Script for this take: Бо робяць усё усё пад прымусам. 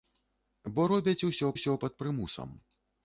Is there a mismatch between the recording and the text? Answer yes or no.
no